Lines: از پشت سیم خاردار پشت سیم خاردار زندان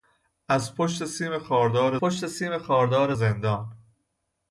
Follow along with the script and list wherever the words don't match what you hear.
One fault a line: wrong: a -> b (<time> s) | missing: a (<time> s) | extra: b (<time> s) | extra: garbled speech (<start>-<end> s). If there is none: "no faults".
no faults